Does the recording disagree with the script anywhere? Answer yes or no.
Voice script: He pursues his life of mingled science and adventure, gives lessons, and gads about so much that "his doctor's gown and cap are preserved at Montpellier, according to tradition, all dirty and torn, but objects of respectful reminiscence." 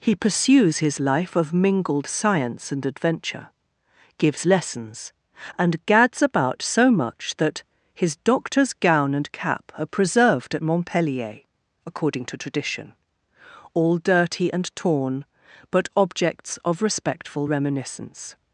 no